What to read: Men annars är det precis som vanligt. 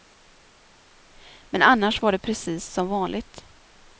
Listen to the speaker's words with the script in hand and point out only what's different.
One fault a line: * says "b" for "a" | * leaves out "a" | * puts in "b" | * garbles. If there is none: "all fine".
* says "var" for "är"